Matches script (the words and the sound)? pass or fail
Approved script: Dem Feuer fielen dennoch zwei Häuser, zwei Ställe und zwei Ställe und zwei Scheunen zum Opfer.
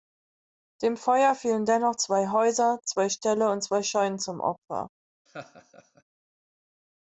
fail